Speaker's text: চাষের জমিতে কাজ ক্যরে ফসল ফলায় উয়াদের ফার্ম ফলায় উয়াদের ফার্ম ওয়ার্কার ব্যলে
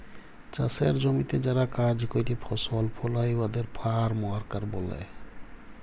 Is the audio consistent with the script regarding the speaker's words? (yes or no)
no